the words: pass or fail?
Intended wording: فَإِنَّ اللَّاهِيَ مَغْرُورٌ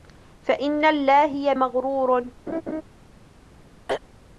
pass